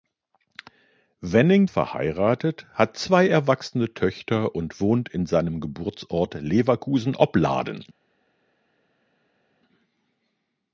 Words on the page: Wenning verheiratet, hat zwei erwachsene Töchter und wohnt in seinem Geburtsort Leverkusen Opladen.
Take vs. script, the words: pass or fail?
pass